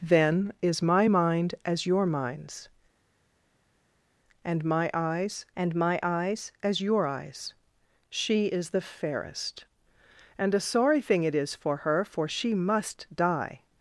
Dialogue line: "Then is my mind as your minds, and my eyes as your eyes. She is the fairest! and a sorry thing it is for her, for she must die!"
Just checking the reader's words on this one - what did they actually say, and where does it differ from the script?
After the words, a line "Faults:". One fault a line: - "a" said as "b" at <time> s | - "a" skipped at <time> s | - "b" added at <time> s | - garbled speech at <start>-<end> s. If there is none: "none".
"Then is my mind as your minds, and my eyes and my eyes as your eyes. She is the fairest! and a sorry thing it is for her, for she must die!"
Faults:
- "and my eyes" added at 5.6 s